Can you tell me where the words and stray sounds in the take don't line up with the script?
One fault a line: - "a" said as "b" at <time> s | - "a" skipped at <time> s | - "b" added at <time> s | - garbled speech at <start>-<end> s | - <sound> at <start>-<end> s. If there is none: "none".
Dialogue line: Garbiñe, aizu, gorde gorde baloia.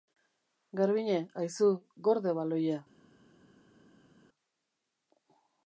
- "gorde" skipped at 2.3 s